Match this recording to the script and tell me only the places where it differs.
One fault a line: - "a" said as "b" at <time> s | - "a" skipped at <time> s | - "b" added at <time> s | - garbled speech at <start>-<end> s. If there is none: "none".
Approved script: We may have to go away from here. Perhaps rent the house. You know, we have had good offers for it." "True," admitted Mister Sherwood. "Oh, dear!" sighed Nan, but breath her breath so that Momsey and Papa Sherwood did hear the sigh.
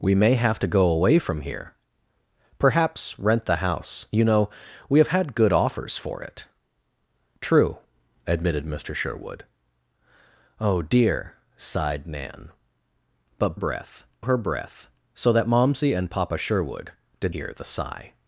none